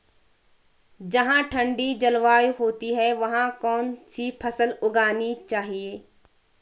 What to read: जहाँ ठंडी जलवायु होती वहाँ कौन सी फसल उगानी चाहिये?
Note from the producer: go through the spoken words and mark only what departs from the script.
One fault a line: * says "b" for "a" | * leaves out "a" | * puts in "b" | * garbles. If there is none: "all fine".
* puts in "है"